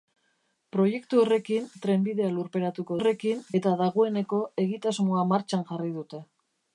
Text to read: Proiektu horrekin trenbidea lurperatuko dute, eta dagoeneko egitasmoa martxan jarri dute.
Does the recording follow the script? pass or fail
fail